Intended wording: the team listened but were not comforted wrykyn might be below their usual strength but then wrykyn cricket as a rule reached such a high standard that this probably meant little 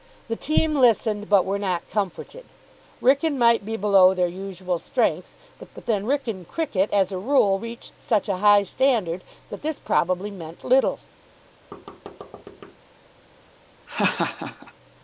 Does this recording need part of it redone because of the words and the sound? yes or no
yes